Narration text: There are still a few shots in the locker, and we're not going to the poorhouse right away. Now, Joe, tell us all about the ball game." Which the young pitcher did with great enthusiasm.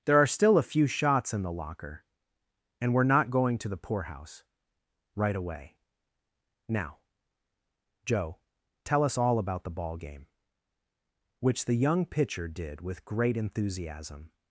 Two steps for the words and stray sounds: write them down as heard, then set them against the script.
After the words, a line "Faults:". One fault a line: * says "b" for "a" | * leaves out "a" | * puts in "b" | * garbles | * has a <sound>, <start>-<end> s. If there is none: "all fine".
There are still a few shots in the locker, and we're not going to the poorhouse right away. Now, Joe, tell us all about the ball game." Which the young pitcher did with great enthusiasm.
Faults:
all fine